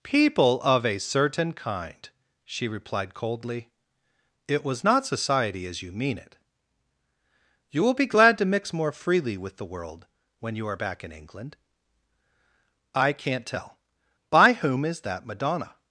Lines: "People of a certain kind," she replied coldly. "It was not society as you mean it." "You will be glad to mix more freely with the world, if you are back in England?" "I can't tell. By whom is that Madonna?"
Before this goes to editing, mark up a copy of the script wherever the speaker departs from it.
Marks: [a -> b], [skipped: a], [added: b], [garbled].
"People of a certain kind," she replied coldly. "It was not society as you mean it." "You will be glad to mix more freely with the world, [if -> when] you are back in England?" "I can't tell. By whom is that Madonna?"